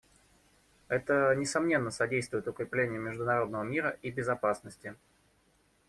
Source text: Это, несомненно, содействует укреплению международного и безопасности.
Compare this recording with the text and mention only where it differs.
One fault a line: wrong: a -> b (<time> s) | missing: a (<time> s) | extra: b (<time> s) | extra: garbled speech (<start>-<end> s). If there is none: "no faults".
extra: мира (3.6 s)